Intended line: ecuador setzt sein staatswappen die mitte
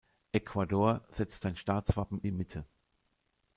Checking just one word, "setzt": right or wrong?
right